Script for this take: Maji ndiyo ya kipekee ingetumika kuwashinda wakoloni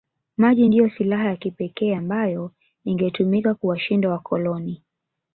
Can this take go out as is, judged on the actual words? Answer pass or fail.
fail